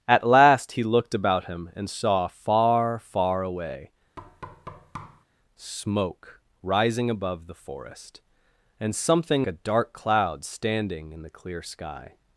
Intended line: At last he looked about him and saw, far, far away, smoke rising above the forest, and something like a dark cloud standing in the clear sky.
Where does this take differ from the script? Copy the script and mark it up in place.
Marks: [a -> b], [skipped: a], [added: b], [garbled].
At last he looked about him and saw, far, far away, smoke rising above the forest, and something [skipped: like] a dark cloud standing in the clear sky.